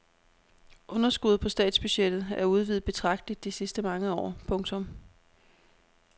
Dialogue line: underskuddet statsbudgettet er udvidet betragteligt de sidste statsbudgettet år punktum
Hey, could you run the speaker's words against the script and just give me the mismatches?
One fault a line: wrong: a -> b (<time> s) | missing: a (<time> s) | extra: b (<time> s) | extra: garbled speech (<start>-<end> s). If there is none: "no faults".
extra: på (1.4 s)
wrong: statsbudgettet -> mange (3.8 s)